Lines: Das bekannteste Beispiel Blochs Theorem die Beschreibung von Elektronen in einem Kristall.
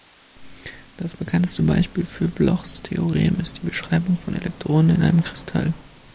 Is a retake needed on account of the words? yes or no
yes